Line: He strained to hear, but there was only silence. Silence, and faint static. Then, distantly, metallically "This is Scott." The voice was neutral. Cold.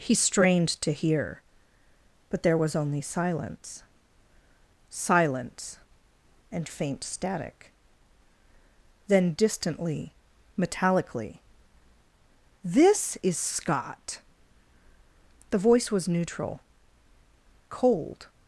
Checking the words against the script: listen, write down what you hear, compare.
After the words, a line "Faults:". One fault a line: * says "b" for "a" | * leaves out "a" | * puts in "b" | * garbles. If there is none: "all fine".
He strained to hear, but there was only silence. Silence, and faint static. Then, distantly, metallically "This is Scott." The voice was neutral. Cold.
Faults:
all fine